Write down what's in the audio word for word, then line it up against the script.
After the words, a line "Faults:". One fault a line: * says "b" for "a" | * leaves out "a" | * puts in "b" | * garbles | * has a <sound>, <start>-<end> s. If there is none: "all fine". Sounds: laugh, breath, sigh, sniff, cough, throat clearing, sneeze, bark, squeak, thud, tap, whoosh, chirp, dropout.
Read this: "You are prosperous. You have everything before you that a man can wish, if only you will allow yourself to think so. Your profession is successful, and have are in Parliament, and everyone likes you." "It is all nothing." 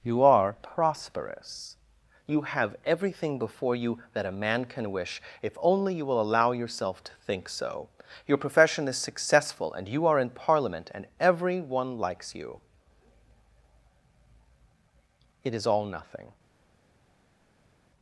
"You are prosperous. You have everything before you that a man can wish, if only you will allow yourself to think so. Your profession is successful, and you are in Parliament, and everyone likes you." "It is all nothing."
Faults:
* says "you" for "have"